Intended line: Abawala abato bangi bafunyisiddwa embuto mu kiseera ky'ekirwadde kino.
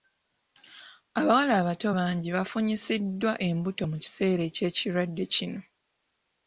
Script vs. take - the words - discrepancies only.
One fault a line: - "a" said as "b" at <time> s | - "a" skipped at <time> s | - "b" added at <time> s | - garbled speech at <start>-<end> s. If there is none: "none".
none